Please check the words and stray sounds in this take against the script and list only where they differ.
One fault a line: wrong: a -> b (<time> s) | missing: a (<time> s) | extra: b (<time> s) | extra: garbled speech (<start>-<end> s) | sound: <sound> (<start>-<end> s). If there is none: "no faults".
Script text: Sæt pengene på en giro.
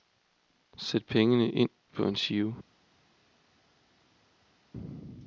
extra: ind (1.5 s)